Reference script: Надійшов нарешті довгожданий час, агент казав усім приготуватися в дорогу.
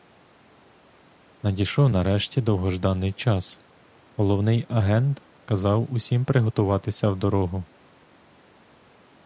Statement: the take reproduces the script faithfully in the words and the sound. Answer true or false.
false